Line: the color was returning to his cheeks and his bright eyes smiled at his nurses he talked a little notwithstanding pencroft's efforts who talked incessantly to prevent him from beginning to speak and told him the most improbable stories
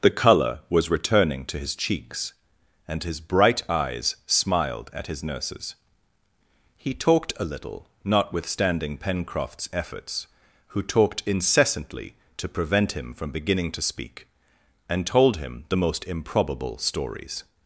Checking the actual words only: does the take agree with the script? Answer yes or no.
yes